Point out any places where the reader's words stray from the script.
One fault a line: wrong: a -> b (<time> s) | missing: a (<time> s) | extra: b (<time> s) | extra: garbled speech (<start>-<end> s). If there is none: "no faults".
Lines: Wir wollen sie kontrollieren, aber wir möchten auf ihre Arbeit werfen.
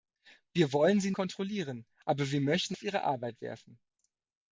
no faults